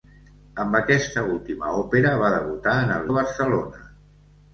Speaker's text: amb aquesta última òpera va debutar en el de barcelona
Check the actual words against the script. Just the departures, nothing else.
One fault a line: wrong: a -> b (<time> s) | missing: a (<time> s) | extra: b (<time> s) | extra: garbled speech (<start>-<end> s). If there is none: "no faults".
no faults